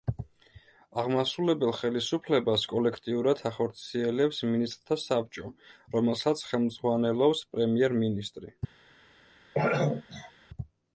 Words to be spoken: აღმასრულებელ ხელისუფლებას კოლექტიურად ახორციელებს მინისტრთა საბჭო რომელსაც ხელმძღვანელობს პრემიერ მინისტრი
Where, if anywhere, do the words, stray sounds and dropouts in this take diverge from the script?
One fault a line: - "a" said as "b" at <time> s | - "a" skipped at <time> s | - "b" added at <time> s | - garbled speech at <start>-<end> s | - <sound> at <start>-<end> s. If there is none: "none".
- throat clearing at 9.5-10.3 s